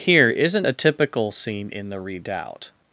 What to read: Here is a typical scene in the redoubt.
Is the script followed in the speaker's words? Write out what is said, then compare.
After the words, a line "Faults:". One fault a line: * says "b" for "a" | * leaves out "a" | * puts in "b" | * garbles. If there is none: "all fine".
Here isn't a typical scene in the redoubt.
Faults:
* says "isn't" for "is"